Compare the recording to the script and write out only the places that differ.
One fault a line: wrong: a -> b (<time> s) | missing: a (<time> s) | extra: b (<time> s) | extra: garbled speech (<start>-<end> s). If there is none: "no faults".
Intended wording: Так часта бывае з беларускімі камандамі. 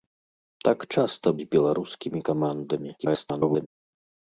missing: бывае (1.3 s)
extra: garbled speech (3.0-3.7 s)